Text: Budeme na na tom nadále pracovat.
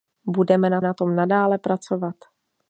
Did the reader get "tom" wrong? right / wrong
right